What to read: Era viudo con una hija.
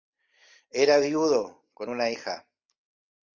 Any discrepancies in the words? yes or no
no